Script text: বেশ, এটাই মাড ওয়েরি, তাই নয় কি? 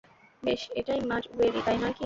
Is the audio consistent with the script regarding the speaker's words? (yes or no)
yes